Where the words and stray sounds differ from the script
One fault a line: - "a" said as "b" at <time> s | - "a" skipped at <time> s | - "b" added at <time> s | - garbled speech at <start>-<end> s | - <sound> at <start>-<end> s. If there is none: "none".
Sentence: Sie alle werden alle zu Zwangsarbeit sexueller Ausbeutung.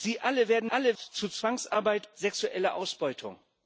none